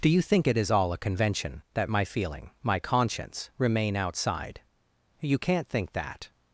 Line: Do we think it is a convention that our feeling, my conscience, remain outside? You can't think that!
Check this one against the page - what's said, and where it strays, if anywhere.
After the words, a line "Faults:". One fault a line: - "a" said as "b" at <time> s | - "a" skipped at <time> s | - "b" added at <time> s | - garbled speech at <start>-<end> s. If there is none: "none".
Do you think it is all a convention that my feeling, my conscience, remain outside? You can't think that!
Faults:
- "we" said as "you" at 0.1 s
- "all" added at 0.7 s
- "our" said as "my" at 1.9 s